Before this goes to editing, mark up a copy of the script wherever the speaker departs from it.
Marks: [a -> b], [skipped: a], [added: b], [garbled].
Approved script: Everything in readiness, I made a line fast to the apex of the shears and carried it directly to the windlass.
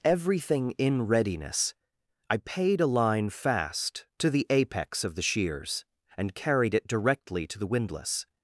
Everything in readiness, I [made -> paid] a line fast to the apex of the shears and carried it directly to the windlass.